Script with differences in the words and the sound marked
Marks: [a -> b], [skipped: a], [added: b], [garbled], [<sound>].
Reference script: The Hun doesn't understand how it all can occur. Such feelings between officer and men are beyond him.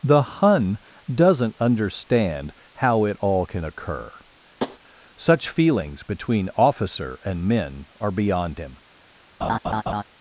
The Hun doesn't understand how it all can occur. [tap] Such feelings between officer and men are beyond him. [laugh]